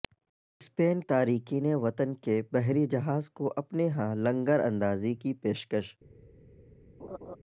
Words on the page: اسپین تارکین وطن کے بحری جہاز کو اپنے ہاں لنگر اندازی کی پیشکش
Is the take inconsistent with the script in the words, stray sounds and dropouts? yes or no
yes